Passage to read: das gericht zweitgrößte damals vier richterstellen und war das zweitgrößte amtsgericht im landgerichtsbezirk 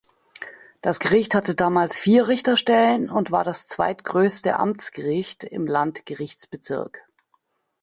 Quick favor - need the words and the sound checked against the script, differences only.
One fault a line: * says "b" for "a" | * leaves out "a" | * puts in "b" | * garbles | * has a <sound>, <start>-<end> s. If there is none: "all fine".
* says "hatte" for "zweitgrößte"